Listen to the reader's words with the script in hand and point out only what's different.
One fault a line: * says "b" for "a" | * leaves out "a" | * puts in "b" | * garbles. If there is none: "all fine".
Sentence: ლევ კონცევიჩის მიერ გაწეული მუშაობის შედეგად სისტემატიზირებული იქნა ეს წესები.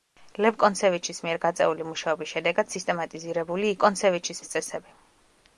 * says "კონცევიჩის" for "იქნა"